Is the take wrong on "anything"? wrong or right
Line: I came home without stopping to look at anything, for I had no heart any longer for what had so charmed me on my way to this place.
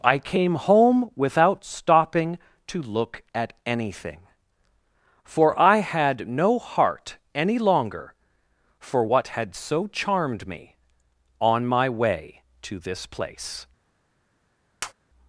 right